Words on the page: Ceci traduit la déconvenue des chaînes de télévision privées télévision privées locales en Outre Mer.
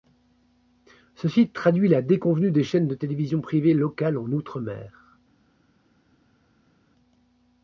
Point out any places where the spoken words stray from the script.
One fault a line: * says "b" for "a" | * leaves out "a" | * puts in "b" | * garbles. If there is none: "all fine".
* leaves out "télévision privées"